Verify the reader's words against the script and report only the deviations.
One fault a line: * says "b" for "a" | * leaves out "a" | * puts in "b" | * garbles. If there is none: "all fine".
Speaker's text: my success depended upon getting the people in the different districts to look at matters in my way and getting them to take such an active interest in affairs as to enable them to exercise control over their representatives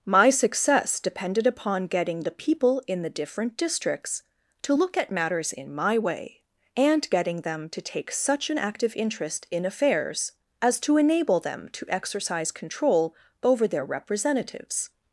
all fine